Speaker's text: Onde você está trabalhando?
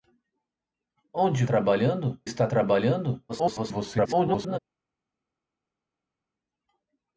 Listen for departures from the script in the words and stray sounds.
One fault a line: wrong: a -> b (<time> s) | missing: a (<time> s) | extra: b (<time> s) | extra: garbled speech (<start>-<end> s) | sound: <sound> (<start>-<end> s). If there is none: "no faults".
wrong: você -> trabalhando (1.4 s)
extra: garbled speech (3.3-4.6 s)